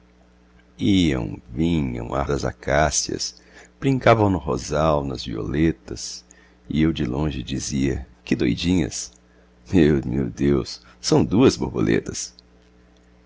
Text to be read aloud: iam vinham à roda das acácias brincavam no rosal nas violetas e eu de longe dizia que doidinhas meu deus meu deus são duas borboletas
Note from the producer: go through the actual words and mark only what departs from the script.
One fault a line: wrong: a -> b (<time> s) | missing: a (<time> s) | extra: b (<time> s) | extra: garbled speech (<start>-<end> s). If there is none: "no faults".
missing: roda (2.2 s)
missing: deus (10.0 s)